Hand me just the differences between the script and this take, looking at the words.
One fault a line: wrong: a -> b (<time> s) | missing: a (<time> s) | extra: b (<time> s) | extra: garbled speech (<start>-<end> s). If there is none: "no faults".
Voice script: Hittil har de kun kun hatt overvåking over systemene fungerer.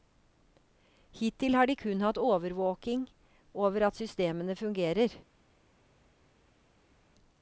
missing: kun (2.0 s)
extra: at (3.9 s)